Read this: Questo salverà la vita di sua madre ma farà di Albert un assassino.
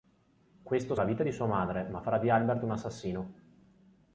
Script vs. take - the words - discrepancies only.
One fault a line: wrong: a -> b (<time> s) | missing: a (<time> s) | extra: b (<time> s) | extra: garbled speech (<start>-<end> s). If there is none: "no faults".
missing: salverà (0.9 s)